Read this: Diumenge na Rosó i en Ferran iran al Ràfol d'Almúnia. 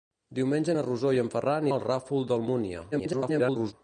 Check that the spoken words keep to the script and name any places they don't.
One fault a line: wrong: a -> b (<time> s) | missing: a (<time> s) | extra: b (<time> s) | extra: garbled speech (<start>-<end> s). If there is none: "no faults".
missing: iran (1.7 s)
extra: garbled speech (2.9-3.7 s)